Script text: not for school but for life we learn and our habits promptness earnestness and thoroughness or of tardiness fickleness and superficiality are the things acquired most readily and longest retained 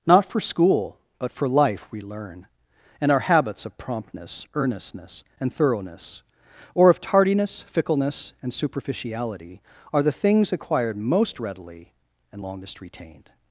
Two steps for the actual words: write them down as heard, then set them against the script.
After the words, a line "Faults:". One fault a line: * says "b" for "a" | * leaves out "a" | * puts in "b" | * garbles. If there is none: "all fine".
not for school but for life we learn and our habits of promptness earnestness and thoroughness or of tardiness fickleness and superficiality are the things acquired most readily and longest retained
Faults:
* puts in "of"